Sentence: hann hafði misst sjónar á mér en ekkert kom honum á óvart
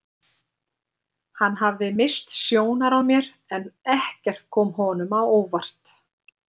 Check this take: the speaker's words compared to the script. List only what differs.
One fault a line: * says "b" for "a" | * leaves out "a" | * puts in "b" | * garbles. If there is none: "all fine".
all fine